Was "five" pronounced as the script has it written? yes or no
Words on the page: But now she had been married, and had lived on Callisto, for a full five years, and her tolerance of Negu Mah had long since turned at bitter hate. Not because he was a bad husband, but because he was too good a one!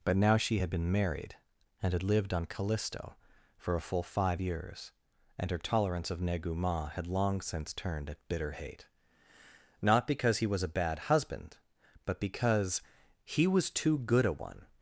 yes